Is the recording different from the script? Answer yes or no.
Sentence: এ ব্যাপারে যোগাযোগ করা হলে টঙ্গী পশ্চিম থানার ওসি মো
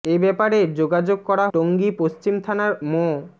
yes